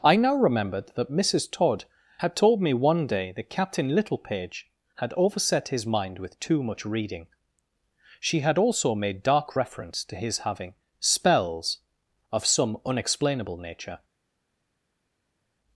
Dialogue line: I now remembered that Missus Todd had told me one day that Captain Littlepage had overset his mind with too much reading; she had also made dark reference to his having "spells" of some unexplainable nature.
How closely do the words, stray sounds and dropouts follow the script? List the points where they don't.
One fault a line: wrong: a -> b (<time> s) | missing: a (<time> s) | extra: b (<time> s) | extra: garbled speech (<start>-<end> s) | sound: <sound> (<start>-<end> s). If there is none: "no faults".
no faults